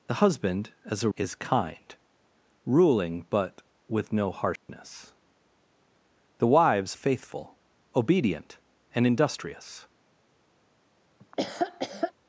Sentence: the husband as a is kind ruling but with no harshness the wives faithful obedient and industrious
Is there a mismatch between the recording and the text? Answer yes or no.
no